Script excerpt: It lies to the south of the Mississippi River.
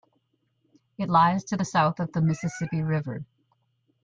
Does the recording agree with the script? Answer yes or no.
yes